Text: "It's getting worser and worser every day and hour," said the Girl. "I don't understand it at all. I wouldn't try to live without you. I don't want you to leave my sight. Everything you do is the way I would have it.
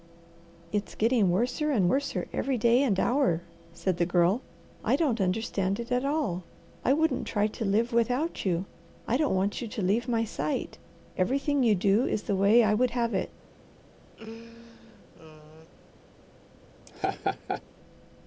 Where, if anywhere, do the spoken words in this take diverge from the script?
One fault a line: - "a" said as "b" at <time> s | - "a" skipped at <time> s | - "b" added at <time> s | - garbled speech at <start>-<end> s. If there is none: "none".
none